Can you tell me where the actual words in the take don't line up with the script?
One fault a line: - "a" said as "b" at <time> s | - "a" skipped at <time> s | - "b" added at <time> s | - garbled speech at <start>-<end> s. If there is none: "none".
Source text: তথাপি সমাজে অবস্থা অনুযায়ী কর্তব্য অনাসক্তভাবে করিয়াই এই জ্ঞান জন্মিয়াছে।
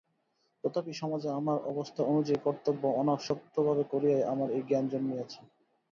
- "আমার" added at 1.4 s
- "আমার" added at 4.3 s